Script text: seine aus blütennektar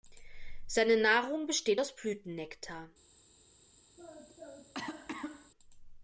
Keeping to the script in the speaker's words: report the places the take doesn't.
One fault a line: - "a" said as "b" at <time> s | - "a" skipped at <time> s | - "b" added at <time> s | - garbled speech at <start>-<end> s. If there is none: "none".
- "nahrung besteht" added at 1.0 s